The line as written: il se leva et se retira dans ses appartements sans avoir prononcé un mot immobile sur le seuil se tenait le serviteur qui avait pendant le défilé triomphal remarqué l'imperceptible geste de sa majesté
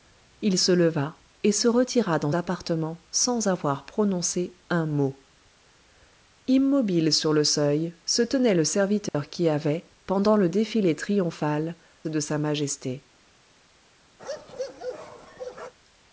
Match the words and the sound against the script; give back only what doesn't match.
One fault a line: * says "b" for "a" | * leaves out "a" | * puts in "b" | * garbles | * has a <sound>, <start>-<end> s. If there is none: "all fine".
* leaves out "ses"
* has a dropout, 9.1-9.1 s
* leaves out "remarqué l'imperceptible geste"
* has a bark, 14.2-15.7 s